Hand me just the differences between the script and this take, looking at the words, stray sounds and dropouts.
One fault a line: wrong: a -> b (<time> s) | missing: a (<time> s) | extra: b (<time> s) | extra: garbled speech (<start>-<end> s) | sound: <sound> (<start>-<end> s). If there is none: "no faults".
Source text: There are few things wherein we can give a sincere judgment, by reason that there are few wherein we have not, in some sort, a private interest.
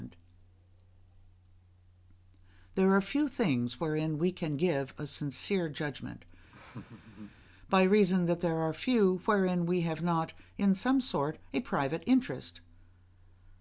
sound: laugh (6.5-7.4 s)